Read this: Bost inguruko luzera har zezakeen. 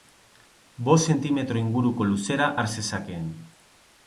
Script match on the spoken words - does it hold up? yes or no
no